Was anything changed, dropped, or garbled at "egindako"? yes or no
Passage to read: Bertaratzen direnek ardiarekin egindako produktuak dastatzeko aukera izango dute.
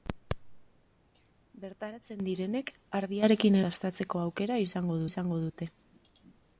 yes